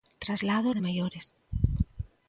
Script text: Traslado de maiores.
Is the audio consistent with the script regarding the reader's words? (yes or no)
yes